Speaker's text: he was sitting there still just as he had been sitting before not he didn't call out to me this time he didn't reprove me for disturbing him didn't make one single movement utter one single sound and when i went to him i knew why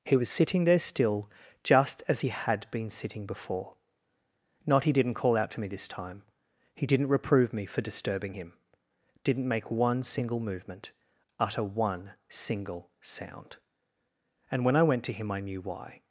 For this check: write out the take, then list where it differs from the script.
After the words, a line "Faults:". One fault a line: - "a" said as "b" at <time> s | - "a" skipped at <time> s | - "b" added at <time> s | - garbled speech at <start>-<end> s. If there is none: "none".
he was sitting there still just as he had been sitting before not he didn't call out to me this time he didn't reprove me for disturbing him didn't make one single movement utter one single sound and when i went to him i knew why
Faults:
none